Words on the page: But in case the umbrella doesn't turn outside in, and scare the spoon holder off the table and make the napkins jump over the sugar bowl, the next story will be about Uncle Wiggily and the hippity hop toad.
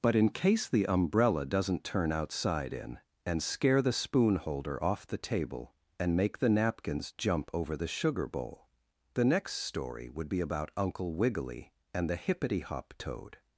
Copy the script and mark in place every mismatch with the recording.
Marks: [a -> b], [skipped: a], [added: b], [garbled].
But in case the umbrella doesn't turn outside in, and scare the spoon holder off the table and make the napkins jump over the sugar bowl, the next story [will -> would] be about Uncle Wiggily and the hippity hop toad.